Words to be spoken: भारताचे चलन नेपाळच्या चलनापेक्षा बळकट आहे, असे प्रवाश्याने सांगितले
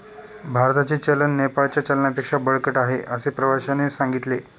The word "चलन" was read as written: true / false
true